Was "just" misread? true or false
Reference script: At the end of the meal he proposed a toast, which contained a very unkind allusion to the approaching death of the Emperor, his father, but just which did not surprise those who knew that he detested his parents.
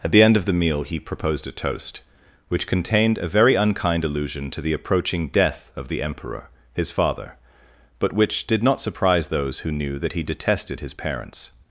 true